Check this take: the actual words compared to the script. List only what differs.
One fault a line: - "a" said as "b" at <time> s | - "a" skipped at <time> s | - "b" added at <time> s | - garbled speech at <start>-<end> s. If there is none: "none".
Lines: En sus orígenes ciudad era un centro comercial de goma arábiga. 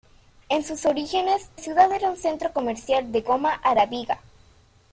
none